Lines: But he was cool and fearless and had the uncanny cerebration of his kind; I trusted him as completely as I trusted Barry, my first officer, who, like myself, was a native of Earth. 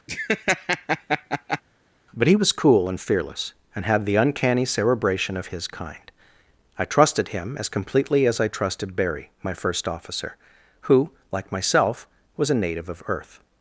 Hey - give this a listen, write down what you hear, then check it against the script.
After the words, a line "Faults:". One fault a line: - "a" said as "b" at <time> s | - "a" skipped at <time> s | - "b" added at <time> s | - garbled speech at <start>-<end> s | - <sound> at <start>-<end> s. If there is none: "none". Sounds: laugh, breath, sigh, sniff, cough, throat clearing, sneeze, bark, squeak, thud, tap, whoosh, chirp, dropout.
But he was cool and fearless and had the uncanny cerebration of his kind; I trusted him as completely as I trusted Barry, my first officer, who, like myself, was a native of Earth.
Faults:
- laugh at 0.1-1.6 s